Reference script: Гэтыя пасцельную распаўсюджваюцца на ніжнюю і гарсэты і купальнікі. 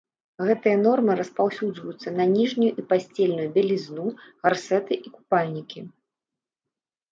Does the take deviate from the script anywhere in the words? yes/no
yes